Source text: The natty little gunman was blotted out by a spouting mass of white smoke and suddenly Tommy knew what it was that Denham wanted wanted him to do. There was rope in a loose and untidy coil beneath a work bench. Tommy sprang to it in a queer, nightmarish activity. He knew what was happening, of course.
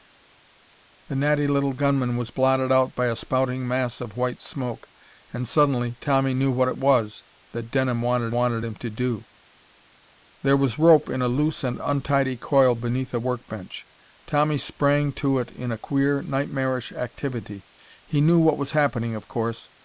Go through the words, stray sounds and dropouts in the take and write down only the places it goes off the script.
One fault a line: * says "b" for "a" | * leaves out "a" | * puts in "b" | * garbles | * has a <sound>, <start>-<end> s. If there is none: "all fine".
all fine